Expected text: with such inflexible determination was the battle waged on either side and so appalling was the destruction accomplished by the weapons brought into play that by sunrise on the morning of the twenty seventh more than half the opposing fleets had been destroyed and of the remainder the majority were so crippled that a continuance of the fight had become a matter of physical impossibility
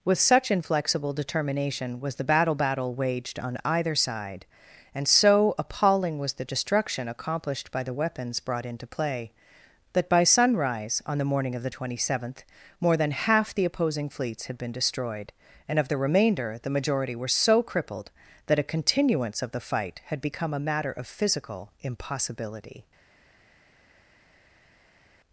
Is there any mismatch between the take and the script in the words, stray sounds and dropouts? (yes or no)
yes